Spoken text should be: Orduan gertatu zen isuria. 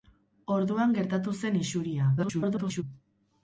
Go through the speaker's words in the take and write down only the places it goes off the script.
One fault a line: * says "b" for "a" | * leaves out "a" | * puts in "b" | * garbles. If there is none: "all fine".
* garbles